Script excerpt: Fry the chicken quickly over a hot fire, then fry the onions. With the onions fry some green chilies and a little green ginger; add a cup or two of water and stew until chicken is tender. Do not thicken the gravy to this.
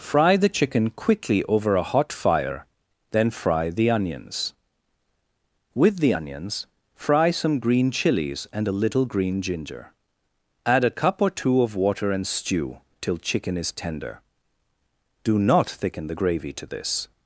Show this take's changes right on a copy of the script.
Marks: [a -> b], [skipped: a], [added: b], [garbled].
Fry the chicken quickly over a hot fire, then fry the onions. With the onions fry some green chilies and a little green ginger; add a cup or two of water and stew [until -> till] chicken is tender. Do not thicken the gravy to this.